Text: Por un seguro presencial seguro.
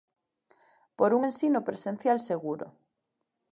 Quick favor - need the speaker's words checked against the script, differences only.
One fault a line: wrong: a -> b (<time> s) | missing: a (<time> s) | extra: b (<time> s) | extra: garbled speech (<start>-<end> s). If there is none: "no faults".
wrong: seguro -> ensino (1.2 s)